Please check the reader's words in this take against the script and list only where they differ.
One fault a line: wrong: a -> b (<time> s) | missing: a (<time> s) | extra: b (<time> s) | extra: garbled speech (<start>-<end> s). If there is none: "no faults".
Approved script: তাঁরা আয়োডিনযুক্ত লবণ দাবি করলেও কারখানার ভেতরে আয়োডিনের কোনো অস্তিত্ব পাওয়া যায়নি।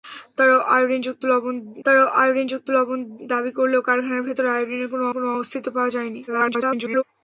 extra: তাঁরা আয়োডিনযুক্ত লবণ (1.8 s)
extra: কোনো (5.1 s)
extra: garbled speech (6.3-7.0 s)